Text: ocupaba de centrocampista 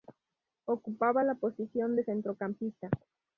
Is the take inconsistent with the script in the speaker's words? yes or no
yes